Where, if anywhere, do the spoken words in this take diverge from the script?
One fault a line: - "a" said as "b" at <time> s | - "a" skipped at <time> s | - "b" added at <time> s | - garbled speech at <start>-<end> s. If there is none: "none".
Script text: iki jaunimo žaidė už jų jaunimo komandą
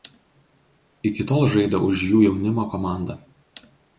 - "jaunimo" said as "tol" at 1.3 s